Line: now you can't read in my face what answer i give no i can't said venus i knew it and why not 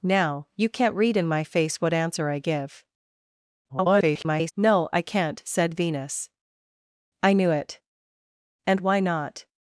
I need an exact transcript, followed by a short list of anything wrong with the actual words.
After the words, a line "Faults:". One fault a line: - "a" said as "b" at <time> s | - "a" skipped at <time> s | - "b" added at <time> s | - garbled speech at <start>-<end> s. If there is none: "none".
now you can't read in my face what answer i give [garbled] no i can't said venus i knew it and why not
Faults:
- garbled speech at 3.7-4.5 s